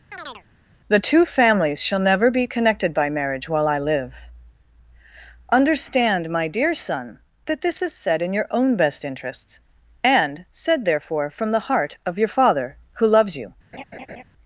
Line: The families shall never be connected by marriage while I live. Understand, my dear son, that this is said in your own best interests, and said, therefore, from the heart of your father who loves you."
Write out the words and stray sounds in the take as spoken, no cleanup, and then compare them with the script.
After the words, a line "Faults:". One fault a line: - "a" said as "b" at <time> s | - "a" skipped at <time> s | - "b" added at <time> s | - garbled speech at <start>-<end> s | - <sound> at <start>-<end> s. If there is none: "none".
The two families shall never be connected by marriage while I live. Understand, my dear son, that this is said in your own best interests, and said, therefore, from the heart of your father who loves you."
Faults:
- chirp at 0.1-0.4 s
- "two" added at 1.0 s
- laugh at 13.7-14.2 s